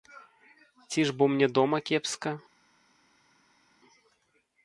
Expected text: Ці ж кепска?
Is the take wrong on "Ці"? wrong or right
right